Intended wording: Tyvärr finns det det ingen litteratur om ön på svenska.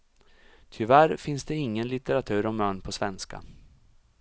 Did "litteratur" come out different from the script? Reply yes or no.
no